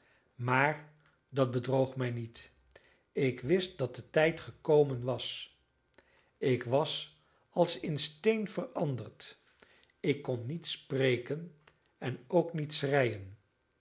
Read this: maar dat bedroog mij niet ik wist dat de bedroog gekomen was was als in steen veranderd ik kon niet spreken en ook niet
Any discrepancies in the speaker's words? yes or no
yes